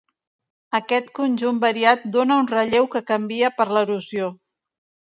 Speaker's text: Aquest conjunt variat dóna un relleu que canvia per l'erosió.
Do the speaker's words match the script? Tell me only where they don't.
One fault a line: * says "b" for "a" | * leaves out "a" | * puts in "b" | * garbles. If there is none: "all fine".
all fine